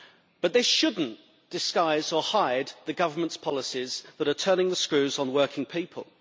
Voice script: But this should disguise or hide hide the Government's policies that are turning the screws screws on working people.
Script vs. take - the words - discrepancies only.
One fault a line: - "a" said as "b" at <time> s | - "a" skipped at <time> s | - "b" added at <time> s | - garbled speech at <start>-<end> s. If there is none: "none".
- "not" added at 1.0 s
- "hide" skipped at 2.7 s
- "screws" skipped at 5.2 s